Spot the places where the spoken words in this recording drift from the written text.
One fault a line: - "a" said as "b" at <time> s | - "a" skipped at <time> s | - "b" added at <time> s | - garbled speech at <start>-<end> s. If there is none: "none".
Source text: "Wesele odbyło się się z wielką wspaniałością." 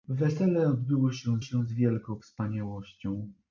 none